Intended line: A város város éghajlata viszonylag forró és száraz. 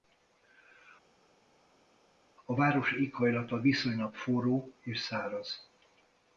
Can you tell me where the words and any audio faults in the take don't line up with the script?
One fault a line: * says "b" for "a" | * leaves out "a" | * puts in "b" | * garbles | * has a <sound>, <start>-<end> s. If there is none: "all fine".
* leaves out "város"